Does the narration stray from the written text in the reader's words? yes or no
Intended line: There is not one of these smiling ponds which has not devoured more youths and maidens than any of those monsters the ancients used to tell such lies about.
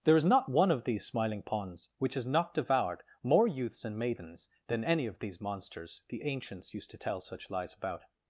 yes